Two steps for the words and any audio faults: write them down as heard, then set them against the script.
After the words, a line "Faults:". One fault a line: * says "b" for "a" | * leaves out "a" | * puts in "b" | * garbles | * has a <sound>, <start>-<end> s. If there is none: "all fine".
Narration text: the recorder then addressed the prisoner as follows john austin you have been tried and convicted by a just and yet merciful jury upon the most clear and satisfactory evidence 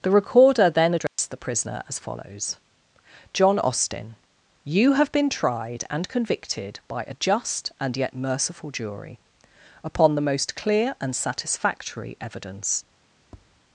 the recorder then addressed the prisoner as follows john austin you have been tried and convicted by a just and yet merciful jury upon the most clear and satisfactory evidence
Faults:
* has a dropout, 1.1-1.2 s
* has a tap, 13.2-13.6 s